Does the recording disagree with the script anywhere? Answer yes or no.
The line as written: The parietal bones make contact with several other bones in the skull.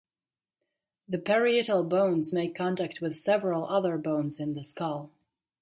no